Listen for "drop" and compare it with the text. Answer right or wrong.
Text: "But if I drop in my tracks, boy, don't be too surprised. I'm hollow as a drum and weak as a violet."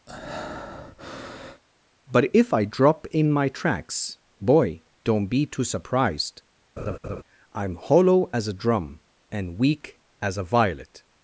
right